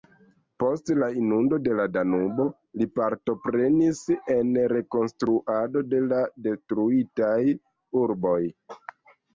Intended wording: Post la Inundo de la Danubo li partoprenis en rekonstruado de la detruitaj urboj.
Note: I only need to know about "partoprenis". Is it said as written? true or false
true